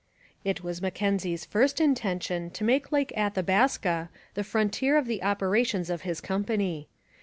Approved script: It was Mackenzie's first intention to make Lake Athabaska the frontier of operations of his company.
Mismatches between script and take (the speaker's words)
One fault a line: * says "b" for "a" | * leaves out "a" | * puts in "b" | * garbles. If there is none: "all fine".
* puts in "the"